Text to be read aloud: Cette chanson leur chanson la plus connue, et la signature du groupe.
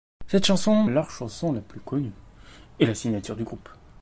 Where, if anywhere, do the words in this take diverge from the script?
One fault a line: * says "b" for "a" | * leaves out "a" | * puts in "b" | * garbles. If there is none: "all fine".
all fine